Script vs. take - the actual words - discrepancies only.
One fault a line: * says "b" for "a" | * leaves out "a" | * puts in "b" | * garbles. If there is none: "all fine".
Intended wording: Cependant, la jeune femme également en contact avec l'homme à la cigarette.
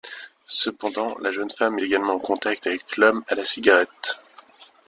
all fine